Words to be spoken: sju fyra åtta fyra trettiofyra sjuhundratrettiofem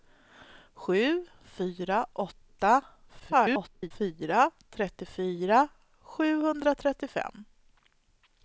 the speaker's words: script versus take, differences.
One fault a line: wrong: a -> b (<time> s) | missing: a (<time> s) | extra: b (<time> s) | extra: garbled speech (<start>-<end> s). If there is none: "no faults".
extra: garbled speech (3.2-3.9 s)